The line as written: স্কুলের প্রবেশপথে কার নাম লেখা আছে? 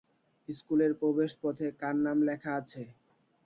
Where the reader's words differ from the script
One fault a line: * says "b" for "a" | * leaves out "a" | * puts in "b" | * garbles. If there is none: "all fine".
all fine